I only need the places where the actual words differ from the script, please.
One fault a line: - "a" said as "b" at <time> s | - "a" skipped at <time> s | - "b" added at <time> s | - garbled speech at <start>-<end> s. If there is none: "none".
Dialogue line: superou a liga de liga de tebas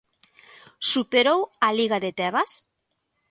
- "liga de" skipped at 2.1 s